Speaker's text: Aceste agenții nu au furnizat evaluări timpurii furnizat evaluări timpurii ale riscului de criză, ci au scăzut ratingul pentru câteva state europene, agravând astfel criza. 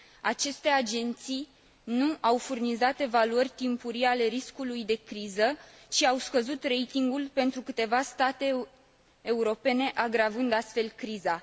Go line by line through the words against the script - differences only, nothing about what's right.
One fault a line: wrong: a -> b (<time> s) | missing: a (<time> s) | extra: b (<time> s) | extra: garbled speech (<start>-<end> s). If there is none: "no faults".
missing: furnizat evaluări timpurii (4.0 s)